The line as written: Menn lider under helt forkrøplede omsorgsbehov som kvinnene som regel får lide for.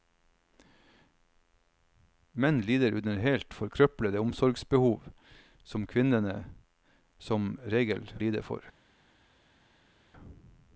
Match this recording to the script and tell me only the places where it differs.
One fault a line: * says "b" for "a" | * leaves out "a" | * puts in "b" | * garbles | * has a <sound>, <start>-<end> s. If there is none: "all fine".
* leaves out "får"